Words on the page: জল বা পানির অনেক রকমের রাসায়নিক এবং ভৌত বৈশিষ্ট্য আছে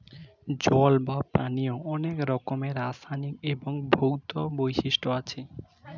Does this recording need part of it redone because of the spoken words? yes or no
no